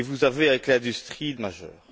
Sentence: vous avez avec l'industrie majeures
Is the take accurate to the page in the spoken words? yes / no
yes